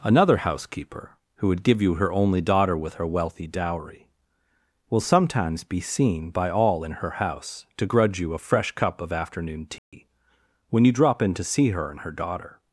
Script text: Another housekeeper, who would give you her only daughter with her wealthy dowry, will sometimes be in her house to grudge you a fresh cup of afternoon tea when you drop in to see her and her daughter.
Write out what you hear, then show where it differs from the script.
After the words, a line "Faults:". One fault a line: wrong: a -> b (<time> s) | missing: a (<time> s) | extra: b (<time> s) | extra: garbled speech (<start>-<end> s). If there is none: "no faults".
Another housekeeper, who would give you her only daughter with her wealthy dowry, will sometimes be seen by all in her house to grudge you a fresh cup of afternoon tea when you drop in to see her and her daughter.
Faults:
extra: seen by all (5.8 s)